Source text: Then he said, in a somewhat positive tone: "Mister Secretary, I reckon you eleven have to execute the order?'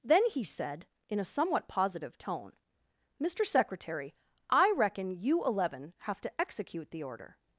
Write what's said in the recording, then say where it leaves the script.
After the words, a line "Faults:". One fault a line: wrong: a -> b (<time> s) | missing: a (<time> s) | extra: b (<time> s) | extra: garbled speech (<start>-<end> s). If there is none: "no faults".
Then he said, in a somewhat positive tone: "Mister Secretary, I reckon you eleven have to execute the order?'
Faults:
no faults